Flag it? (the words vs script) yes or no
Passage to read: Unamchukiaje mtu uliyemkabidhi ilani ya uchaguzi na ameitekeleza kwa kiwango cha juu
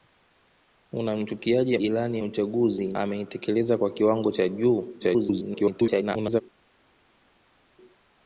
yes